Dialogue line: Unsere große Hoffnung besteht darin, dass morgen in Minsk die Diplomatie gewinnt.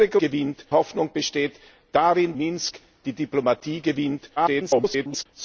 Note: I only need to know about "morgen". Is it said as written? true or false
false